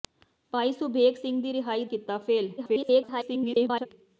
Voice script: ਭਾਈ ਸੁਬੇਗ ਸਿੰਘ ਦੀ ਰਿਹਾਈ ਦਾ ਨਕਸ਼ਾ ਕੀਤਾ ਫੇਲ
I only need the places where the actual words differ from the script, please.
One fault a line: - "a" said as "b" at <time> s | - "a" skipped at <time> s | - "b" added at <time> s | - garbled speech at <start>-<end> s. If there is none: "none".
- "ਦਾ ਨਕਸ਼ਾ" skipped at 1.9 s
- garbled speech at 2.6-3.9 s